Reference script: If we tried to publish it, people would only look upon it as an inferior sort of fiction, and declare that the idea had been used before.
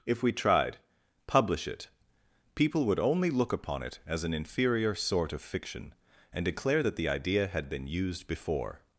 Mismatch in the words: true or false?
true